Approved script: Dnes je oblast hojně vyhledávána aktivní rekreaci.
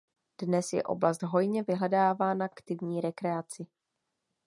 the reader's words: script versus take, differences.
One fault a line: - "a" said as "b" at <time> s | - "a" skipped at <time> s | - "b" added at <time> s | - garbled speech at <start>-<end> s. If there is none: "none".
none